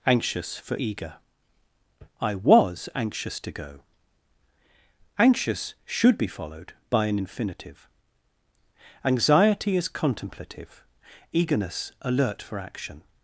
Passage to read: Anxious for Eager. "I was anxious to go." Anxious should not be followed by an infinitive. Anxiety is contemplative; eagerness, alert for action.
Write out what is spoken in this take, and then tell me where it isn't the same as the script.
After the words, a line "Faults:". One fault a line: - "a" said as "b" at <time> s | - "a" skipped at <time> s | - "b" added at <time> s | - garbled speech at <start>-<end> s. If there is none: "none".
Anxious for Eager. "I was anxious to go." Anxious should be followed by an infinitive. Anxiety is contemplative; eagerness, alert for action.
Faults:
- "not" skipped at 6.2 s